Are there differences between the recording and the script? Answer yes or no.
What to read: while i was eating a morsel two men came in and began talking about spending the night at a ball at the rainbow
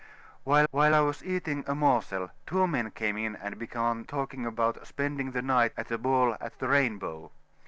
yes